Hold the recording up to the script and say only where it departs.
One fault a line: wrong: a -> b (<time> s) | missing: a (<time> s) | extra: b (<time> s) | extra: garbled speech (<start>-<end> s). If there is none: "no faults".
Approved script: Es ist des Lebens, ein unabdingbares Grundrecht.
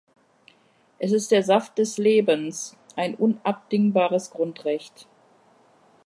extra: der Saft (1.3 s)